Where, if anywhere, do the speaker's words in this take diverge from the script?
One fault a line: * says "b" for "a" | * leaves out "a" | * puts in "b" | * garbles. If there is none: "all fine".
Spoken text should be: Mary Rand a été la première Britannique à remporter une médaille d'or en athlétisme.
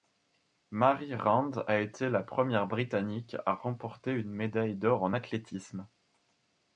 all fine